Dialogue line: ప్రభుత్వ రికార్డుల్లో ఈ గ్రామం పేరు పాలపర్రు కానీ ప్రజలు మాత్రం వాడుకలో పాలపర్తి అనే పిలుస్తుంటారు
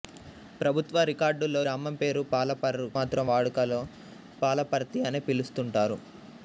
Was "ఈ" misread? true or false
true